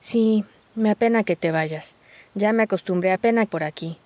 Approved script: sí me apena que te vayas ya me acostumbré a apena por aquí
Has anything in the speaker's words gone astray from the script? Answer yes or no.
no